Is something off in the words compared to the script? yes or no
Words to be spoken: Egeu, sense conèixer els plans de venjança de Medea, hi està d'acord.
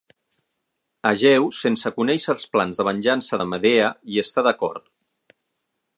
no